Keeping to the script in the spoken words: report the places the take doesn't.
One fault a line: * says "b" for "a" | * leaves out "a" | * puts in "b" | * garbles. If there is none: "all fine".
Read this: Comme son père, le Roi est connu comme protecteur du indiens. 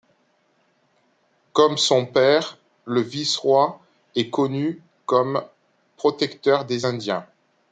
* puts in "Vice"
* says "des" for "du"